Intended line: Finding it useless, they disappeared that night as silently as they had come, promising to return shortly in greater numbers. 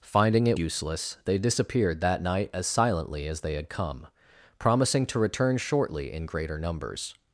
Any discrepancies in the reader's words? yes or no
no